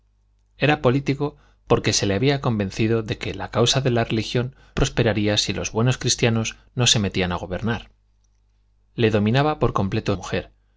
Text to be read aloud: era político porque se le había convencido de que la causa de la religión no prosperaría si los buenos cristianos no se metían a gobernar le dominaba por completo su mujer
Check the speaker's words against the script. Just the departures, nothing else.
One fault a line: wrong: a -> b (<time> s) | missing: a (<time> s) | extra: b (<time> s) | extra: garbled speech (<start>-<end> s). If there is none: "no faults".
missing: no (4.5 s)
missing: su (10.2 s)